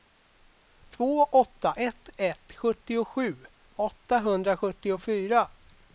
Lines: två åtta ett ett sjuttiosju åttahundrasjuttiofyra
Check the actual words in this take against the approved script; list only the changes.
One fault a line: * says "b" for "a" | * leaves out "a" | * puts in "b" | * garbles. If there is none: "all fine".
all fine